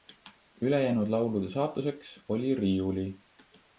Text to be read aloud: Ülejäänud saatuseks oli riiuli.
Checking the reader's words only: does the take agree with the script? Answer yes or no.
no